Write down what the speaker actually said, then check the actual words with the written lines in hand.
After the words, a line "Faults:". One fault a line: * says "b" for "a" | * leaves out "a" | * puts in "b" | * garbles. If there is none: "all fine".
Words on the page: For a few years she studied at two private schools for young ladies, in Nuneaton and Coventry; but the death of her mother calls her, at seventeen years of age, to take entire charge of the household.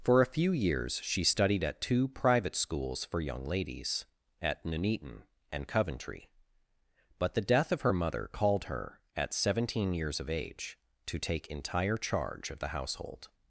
For a few years she studied at two private schools for young ladies, at Nuneaton and Coventry; but the death of her mother called her, at seventeen years of age, to take entire charge of the household.
Faults:
* says "at" for "in"
* says "called" for "calls"